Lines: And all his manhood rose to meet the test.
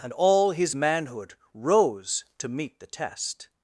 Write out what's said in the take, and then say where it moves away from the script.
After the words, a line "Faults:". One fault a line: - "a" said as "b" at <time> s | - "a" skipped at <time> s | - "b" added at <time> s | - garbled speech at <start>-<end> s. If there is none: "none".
And all his manhood rose to meet the test.
Faults:
none